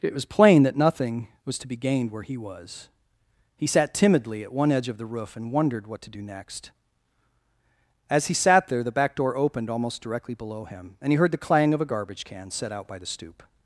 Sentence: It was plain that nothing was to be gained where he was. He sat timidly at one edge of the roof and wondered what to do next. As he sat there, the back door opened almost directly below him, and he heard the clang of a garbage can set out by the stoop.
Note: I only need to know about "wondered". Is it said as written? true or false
true